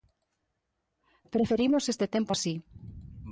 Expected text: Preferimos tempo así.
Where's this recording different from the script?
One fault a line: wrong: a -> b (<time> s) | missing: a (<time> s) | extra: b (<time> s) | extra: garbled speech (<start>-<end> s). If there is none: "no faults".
extra: este (1.9 s)